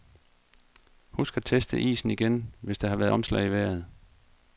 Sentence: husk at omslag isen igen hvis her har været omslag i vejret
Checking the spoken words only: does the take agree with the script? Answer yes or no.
no